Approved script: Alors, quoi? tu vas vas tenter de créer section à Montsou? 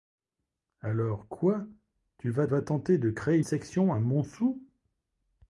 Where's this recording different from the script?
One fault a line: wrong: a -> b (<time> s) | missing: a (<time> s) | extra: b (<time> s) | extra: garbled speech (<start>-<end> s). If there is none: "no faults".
no faults